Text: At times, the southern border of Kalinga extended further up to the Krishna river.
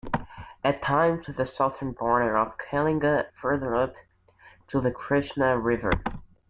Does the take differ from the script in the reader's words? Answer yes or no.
yes